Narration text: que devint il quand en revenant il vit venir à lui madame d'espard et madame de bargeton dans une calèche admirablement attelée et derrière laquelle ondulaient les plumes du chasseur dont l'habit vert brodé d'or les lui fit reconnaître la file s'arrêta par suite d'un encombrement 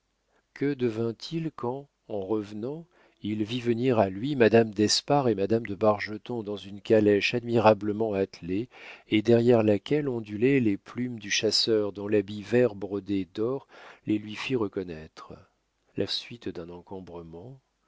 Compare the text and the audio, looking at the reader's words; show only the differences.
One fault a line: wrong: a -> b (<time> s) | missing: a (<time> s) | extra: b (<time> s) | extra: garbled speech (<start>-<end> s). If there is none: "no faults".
missing: file s'arrêta par (16.1 s)